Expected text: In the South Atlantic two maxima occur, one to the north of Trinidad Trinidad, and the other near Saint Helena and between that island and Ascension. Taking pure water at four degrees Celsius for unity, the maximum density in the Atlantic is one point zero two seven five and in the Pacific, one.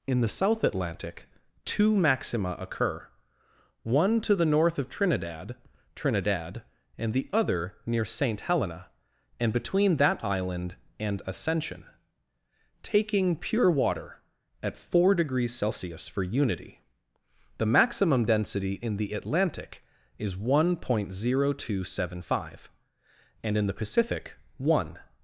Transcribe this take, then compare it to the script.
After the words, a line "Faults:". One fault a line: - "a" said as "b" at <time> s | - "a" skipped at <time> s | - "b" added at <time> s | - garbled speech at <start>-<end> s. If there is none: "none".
In the South Atlantic two maxima occur, one to the north of Trinidad Trinidad, and the other near Saint Helena and between that island and Ascension. Taking pure water at four degrees Celsius for unity, the maximum density in the Atlantic is one point zero two seven five and in the Pacific, one.
Faults:
none